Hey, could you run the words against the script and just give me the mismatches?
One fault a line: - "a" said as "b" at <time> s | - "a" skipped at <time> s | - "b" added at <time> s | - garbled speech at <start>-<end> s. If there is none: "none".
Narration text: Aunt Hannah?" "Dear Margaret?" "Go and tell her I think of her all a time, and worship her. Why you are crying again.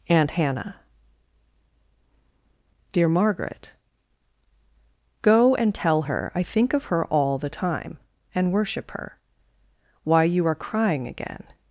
- "a" said as "the" at 7.4 s